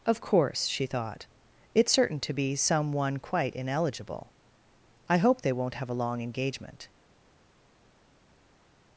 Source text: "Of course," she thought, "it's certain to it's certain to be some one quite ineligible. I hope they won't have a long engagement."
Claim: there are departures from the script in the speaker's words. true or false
true